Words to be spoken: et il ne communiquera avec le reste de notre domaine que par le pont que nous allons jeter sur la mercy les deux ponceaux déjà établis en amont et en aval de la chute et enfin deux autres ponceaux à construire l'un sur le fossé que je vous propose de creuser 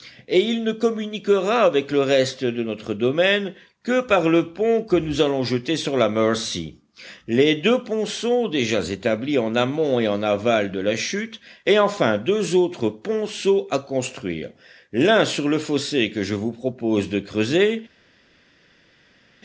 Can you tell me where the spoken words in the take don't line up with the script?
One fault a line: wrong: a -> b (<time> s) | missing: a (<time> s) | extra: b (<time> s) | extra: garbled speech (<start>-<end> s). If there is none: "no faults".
no faults